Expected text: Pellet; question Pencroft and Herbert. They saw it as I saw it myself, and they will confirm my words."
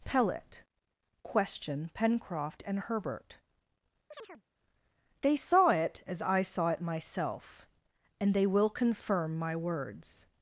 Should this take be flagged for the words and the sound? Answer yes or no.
yes